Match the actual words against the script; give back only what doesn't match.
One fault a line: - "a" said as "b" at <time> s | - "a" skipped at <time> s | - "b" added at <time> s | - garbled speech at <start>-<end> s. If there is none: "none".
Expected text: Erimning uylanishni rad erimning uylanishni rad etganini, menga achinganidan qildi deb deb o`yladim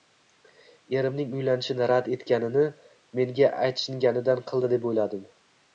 - "erimning uylanishni rad" skipped at 2.1 s
- "deb" skipped at 4.9 s